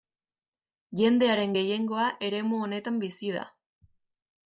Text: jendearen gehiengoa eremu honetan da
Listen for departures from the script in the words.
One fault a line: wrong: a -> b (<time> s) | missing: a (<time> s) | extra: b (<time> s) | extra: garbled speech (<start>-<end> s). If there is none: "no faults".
extra: bizi (3.0 s)